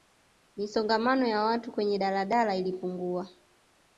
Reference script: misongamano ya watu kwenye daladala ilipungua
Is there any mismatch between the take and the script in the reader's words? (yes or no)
no